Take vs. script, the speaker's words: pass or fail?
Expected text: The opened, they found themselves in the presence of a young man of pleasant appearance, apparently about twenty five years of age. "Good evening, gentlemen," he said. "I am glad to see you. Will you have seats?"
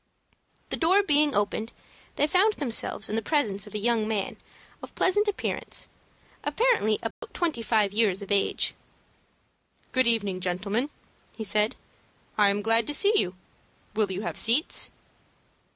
fail